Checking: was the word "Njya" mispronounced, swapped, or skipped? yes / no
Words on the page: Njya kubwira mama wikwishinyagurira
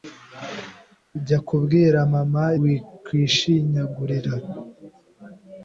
no